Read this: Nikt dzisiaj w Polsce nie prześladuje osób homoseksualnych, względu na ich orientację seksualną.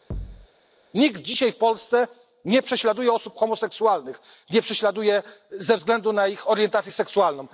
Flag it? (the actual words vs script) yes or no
yes